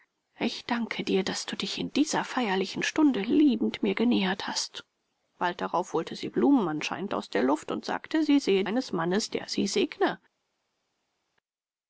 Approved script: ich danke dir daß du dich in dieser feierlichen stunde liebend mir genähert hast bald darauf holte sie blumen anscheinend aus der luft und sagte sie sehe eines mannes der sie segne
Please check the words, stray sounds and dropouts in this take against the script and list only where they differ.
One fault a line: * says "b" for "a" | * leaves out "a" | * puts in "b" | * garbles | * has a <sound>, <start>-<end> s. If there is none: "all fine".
all fine